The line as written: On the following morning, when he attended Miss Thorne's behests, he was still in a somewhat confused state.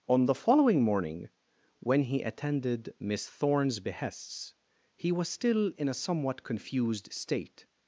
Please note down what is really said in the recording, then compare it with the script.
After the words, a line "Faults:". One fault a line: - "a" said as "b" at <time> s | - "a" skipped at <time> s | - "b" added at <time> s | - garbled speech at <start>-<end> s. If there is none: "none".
On the following morning, when he attended Miss Thorne's behests, he was still in a somewhat confused state.
Faults:
none